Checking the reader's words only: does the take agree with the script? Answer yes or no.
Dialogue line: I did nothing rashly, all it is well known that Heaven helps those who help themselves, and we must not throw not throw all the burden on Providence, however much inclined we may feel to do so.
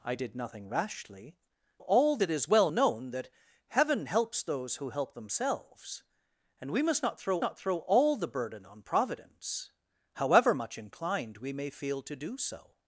yes